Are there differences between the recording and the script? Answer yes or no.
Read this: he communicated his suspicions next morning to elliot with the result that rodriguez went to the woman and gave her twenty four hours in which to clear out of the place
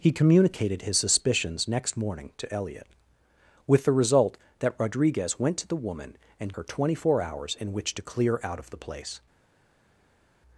yes